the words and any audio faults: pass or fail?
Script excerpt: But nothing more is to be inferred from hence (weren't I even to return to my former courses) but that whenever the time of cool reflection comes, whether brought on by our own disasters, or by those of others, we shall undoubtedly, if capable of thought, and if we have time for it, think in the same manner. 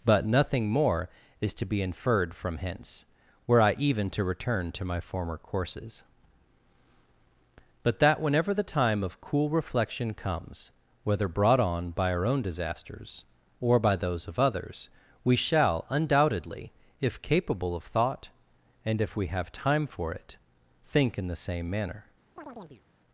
fail